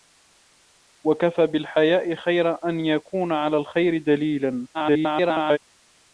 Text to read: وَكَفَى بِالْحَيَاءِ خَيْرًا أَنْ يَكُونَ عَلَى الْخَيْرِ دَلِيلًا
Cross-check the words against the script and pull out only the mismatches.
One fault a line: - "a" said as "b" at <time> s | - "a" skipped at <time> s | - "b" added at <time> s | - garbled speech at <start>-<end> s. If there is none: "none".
- garbled speech at 4.7-5.6 s